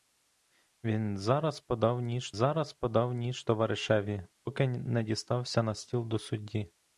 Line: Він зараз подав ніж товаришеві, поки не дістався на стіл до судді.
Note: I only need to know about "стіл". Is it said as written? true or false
true